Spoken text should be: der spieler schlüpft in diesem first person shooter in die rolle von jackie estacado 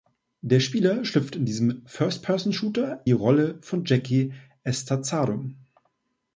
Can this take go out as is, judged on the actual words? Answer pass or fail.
fail